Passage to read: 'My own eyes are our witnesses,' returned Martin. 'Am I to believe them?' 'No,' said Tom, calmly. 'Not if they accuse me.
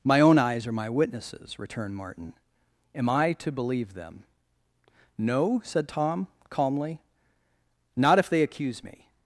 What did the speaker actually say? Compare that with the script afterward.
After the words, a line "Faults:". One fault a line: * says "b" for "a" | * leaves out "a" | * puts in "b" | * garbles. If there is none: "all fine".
'My own eyes are my witnesses,' returned Martin. 'Am I to believe them?' 'No,' said Tom, calmly. 'Not if they accuse me.
Faults:
* says "my" for "our"